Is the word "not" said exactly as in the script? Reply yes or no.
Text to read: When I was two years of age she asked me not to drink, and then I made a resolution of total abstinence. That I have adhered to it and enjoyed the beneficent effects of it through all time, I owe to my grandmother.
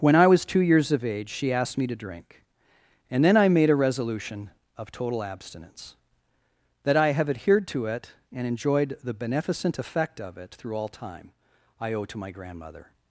no